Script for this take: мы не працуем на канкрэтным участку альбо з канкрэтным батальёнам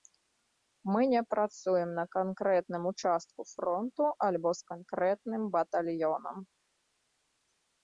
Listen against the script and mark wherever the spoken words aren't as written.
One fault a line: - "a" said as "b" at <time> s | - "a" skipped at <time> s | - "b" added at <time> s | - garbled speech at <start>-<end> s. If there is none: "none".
- "фронту" added at 3.5 s